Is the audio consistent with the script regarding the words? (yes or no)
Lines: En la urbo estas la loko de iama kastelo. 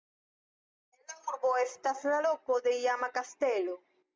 yes